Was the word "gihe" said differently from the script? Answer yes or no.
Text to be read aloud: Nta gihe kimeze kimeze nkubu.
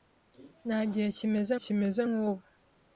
no